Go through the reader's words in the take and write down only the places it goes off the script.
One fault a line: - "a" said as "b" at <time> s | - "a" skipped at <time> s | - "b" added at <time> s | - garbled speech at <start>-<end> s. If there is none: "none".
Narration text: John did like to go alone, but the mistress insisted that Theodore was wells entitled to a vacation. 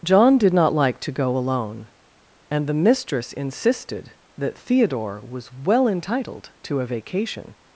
- "not" added at 0.5 s
- "but" said as "and" at 2.5 s
- "wells" said as "well" at 5.5 s